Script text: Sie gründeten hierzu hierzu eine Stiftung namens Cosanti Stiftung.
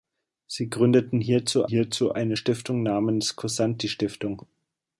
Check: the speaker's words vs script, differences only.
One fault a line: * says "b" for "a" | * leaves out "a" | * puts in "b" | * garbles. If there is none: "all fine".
all fine